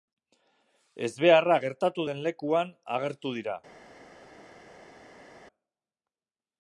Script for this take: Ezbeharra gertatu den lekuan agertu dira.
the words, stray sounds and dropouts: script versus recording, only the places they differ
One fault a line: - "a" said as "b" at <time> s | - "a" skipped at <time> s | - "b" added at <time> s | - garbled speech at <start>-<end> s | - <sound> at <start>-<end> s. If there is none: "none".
none